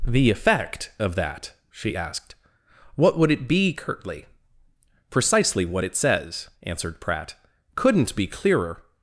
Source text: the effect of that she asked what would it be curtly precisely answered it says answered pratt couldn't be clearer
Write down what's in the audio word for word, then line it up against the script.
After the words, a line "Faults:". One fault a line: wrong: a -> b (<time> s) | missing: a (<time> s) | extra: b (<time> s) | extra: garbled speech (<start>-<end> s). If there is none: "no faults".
the effect of that she asked what would it be curtly precisely what it says answered pratt couldn't be clearer
Faults:
wrong: answered -> what (5.6 s)